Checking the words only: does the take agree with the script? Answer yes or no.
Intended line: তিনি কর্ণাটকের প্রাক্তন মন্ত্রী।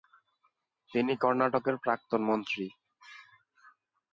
yes